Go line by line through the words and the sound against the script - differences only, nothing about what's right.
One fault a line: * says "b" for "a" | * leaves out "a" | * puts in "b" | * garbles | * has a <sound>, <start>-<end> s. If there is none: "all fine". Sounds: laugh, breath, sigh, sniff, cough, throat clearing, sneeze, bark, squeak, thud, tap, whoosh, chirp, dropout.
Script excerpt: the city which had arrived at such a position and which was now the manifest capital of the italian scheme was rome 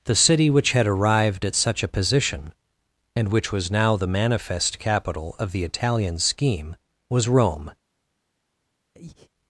* has a breath, 8.9-9.3 s